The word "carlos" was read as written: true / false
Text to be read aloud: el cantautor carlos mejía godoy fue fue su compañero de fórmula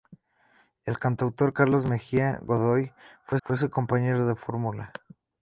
true